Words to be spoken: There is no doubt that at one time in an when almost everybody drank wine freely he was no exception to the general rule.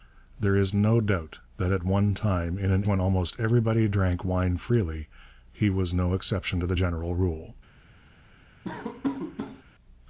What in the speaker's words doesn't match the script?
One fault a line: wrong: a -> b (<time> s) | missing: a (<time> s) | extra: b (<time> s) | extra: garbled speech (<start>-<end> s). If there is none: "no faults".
no faults